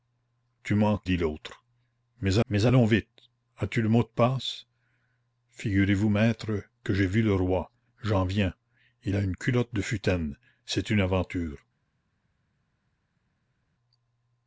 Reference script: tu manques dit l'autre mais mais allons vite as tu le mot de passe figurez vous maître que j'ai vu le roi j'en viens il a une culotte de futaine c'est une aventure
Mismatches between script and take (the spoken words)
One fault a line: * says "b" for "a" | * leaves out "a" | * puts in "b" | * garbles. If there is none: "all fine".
all fine